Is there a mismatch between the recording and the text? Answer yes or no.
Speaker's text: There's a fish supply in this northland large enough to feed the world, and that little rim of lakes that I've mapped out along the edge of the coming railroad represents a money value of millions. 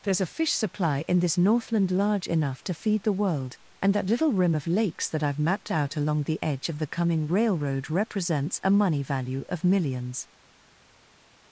no